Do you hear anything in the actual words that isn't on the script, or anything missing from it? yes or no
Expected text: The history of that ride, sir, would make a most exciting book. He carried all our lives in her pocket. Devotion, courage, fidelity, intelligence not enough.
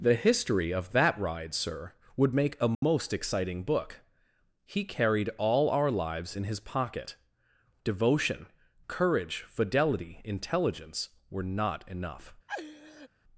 yes